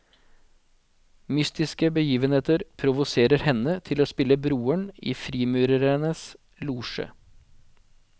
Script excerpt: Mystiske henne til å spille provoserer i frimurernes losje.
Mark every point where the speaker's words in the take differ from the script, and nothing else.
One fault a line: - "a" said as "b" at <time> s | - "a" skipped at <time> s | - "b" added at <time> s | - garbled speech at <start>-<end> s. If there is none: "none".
- "begivenheter provoserer" added at 1.9 s
- "provoserer" said as "broren" at 4.4 s